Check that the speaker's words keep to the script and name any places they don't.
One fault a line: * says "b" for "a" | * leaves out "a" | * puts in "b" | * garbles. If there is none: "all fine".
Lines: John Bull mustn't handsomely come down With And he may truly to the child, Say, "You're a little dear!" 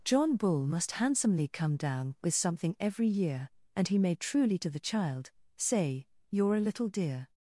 * says "must" for "mustn't"
* puts in "something every year"